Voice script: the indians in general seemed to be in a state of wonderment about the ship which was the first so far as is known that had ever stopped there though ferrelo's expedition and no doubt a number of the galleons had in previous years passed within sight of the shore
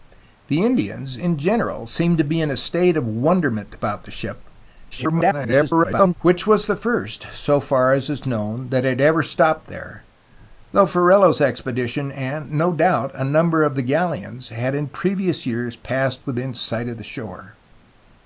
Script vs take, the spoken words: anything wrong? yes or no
yes